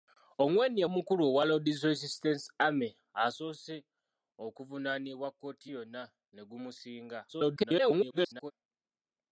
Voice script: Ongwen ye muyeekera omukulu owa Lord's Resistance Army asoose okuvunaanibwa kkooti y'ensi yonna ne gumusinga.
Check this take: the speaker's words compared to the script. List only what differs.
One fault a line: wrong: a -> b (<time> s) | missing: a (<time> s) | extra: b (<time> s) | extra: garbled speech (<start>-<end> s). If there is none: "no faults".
missing: muyeekera (0.9 s)
missing: y'ensi (5.7 s)
extra: garbled speech (7.3-8.5 s)